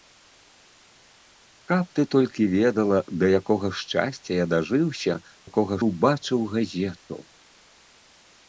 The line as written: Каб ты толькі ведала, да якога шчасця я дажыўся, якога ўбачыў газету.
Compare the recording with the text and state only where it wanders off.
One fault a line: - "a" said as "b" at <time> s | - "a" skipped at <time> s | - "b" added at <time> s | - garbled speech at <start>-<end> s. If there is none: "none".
none